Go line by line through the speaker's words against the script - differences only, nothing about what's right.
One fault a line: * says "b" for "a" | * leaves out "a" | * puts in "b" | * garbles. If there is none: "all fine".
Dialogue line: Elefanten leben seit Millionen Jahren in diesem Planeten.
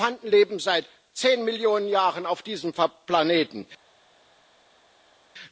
* puts in "zehn"
* says "auf" for "in"